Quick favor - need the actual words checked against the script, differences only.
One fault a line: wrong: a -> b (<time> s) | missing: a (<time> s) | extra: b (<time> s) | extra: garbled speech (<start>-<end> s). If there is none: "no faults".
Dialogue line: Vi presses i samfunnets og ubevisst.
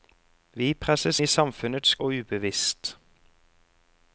no faults